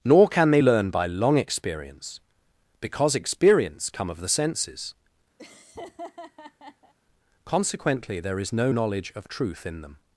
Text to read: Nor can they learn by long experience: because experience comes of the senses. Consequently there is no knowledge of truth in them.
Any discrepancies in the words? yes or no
yes